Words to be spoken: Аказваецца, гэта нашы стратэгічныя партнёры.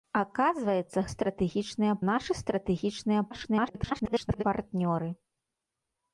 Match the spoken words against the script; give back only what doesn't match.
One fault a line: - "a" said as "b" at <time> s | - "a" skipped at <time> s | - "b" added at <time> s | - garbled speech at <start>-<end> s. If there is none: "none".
- "гэта" said as "стратэгічныя" at 1.1 s
- garbled speech at 3.3-4.4 s